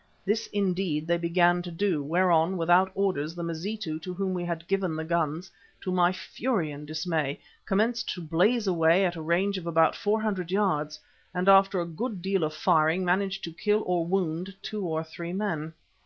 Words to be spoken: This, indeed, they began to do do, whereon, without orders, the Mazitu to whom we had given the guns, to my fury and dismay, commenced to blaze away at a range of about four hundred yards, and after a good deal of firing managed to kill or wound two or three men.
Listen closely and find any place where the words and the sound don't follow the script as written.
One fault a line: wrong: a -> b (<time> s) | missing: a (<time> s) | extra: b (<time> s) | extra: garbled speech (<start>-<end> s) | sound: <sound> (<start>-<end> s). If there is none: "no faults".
missing: do (2.0 s)